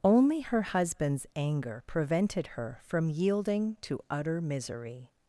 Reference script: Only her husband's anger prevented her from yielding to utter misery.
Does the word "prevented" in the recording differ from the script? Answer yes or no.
no